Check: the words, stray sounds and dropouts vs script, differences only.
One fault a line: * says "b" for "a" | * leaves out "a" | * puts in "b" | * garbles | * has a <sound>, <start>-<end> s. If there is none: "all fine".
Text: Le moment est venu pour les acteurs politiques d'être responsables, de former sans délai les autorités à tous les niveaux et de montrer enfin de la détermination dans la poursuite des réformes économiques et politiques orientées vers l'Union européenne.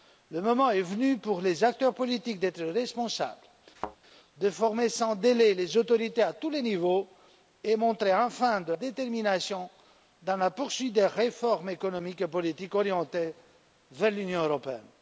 * has a thud, 3.8-4.0 s
* leaves out "la"